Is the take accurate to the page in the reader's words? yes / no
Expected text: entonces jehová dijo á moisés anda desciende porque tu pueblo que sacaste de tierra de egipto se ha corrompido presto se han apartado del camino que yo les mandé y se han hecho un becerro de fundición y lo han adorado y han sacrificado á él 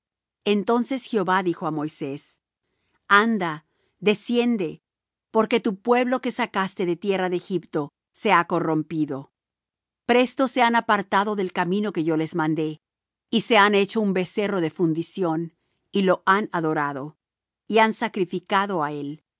yes